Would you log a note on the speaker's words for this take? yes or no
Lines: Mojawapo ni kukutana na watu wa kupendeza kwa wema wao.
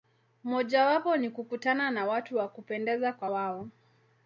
yes